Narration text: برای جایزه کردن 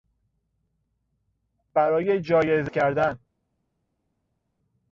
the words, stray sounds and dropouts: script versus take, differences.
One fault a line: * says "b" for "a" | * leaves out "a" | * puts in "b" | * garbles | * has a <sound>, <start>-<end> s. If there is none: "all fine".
all fine